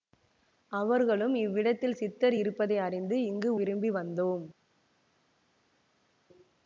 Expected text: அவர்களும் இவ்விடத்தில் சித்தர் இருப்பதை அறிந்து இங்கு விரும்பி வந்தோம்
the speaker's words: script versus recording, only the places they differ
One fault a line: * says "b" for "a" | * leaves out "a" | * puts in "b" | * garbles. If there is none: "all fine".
all fine